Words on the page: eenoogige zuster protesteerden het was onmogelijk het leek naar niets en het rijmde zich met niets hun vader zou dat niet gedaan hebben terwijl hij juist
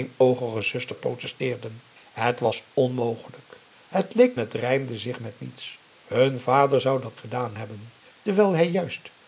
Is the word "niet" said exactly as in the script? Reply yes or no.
no